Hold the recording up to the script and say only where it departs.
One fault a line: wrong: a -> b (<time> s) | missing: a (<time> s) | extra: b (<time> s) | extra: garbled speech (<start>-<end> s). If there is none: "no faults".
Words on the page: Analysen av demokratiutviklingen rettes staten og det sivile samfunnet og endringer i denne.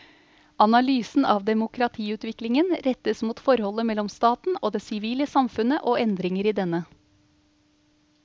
extra: mot forholdet mellom (3.2 s)